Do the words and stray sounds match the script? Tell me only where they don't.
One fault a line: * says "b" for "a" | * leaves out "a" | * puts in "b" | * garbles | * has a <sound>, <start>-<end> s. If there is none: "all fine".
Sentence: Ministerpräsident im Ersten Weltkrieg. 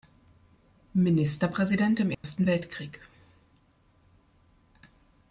* has a dropout, 2.1-2.2 s